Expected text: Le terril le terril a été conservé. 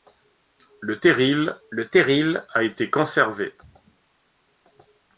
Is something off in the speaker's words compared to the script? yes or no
no